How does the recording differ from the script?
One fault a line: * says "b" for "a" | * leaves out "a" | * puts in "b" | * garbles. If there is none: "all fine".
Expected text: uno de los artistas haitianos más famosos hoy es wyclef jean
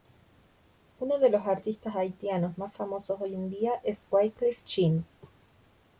* puts in "en día"